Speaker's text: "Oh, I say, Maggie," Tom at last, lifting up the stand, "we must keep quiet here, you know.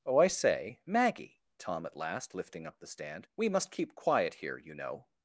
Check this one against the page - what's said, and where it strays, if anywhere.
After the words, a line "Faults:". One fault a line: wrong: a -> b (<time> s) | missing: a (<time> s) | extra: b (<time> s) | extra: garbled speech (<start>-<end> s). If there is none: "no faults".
"Oh, I say, Maggie," Tom at last, lifting up the stand, "we must keep quiet here, you know.
Faults:
no faults